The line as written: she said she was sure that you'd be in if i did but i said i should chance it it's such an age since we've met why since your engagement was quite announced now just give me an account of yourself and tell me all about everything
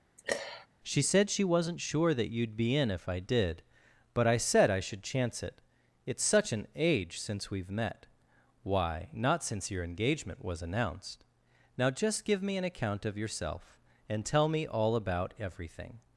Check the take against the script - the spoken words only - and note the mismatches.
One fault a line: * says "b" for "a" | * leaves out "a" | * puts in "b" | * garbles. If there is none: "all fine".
* says "wasn't" for "was"
* puts in "not"
* leaves out "quite"